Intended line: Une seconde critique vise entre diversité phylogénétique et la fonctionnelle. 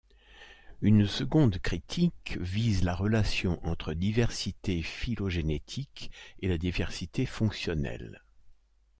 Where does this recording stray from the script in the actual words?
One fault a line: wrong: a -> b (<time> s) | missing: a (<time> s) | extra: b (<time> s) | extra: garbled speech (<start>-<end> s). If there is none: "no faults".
extra: la relation (2.8 s)
extra: diversité (6.6 s)